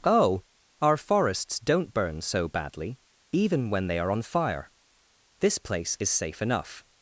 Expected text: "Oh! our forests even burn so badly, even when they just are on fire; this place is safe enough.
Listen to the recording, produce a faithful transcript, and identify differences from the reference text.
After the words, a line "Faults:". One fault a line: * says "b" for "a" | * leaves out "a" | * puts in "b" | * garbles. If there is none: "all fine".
"Oh! our forests don't burn so badly, even when they are on fire; this place is safe enough.
Faults:
* says "don't" for "even"
* leaves out "just"